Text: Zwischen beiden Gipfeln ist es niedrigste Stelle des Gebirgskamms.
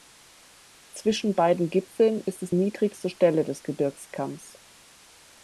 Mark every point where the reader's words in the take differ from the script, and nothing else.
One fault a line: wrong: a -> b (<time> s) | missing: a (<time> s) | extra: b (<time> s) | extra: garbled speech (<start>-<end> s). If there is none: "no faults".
no faults